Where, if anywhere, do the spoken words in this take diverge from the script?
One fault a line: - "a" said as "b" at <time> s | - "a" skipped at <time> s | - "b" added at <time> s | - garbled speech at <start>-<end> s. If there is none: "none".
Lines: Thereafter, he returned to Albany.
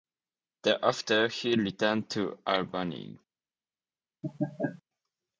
none